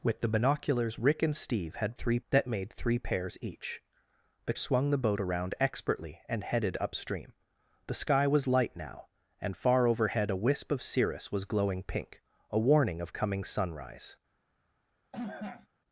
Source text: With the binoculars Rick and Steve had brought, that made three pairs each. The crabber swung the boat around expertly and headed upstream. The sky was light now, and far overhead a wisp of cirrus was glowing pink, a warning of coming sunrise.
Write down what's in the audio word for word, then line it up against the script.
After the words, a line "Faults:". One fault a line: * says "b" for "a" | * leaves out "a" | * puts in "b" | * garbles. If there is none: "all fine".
With the binoculars Rick and Steve had three, that made three pairs each. The swung the boat around expertly and headed upstream. The sky was light now, and far overhead a wisp of cirrus was glowing pink, a warning of coming sunrise.
Faults:
* says "three" for "brought"
* leaves out "crabber"